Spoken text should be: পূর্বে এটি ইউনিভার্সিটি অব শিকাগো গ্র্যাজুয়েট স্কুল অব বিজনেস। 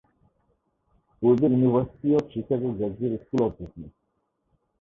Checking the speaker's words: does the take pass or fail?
fail